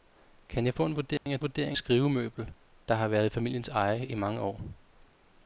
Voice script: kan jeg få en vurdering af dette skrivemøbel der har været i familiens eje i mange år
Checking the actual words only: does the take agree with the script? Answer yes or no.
no